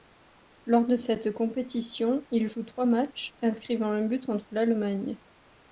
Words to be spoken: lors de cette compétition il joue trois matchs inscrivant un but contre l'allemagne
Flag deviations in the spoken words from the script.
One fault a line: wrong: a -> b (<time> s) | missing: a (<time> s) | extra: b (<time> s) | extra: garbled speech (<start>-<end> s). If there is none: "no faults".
no faults